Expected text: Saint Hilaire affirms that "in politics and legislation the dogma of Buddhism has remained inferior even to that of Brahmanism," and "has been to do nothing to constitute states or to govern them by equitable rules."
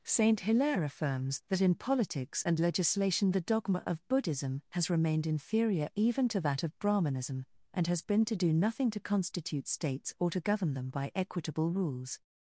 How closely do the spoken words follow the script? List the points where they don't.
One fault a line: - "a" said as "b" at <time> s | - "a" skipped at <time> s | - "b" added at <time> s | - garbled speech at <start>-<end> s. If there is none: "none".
none